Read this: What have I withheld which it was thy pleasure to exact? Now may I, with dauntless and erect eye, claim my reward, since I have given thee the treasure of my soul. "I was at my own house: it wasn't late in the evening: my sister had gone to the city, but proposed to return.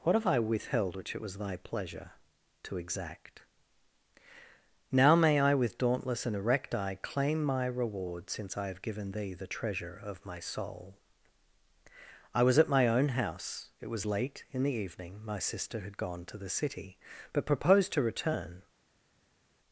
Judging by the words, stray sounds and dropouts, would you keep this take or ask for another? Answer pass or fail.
fail